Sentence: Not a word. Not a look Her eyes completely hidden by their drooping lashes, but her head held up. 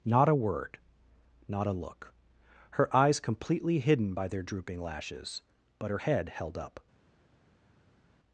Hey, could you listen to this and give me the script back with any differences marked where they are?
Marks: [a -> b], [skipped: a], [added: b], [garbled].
Not a word. Not a look Her eyes completely hidden by their drooping lashes, but her head held up.